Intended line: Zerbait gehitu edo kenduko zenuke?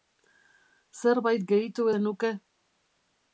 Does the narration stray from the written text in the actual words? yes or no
yes